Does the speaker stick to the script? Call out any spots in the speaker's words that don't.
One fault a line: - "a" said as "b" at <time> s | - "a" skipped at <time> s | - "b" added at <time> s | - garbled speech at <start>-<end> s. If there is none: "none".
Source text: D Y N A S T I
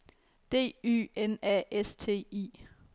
none